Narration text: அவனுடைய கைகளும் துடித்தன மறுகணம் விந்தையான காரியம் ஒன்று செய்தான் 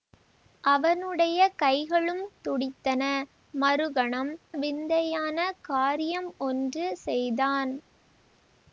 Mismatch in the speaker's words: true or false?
false